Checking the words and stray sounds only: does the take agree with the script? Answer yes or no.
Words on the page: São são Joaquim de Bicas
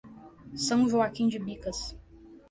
no